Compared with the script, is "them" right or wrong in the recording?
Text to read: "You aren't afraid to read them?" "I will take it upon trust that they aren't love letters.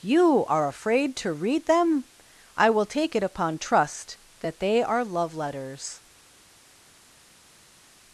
right